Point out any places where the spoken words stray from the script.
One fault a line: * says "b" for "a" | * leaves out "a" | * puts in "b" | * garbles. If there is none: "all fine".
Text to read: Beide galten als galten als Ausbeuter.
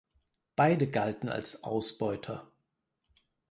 * leaves out "galten als"